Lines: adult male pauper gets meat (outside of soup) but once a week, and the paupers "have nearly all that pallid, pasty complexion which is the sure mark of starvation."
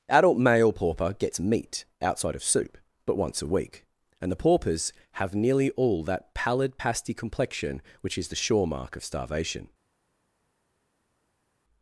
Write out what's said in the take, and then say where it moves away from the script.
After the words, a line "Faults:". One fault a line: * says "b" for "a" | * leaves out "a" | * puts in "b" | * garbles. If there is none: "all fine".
adult male pauper gets meat (outside of soup) but once a week, and the paupers "have nearly all that pallid, pasty complexion which is the sure mark of starvation."
Faults:
all fine